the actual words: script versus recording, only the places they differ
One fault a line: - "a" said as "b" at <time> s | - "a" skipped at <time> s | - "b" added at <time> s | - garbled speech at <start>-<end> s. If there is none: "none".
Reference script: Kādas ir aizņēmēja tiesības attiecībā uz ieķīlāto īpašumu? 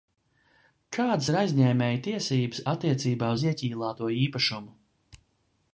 none